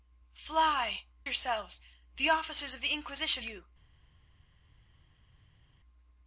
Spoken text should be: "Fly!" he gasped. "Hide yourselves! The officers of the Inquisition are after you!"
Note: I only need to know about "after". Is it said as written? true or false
false